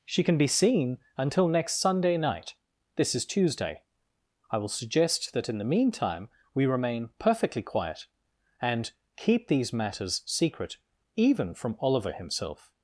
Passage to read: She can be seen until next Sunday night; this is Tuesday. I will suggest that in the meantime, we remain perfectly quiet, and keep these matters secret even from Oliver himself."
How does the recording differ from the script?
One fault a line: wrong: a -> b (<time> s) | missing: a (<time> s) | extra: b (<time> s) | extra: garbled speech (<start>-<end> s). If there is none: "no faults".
no faults